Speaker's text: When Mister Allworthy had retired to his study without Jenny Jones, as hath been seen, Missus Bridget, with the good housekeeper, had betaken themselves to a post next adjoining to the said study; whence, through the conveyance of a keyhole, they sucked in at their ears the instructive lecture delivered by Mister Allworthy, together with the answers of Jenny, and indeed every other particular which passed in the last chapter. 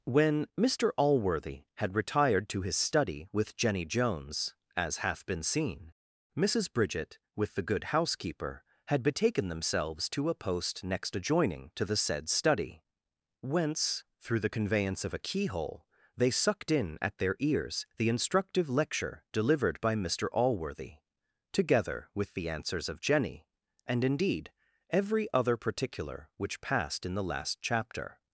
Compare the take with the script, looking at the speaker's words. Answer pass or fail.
fail